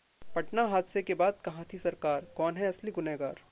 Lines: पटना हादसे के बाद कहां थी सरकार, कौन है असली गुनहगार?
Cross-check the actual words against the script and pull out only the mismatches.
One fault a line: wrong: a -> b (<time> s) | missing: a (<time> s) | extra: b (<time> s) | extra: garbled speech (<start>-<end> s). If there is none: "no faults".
no faults